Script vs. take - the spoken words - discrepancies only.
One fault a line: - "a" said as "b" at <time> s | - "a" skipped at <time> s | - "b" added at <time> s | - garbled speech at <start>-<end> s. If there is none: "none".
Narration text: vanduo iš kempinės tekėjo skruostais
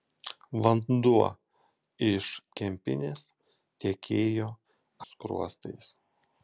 none